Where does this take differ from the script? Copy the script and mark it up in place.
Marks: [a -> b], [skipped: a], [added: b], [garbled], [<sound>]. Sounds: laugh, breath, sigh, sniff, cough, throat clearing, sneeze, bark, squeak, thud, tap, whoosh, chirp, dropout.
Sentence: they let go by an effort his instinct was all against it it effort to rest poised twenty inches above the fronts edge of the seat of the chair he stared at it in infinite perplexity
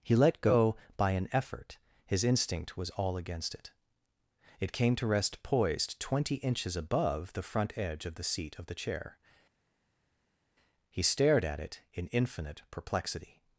[they -> he] let go by an effort his instinct was all against it it [effort -> came] to rest poised twenty inches above the [fronts -> front] edge of the seat of the chair he stared at it in infinite perplexity